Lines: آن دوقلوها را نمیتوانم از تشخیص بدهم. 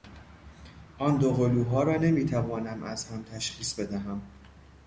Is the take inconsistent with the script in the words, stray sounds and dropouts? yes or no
yes